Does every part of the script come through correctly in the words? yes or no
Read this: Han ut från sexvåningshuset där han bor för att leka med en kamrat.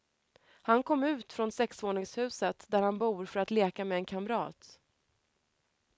no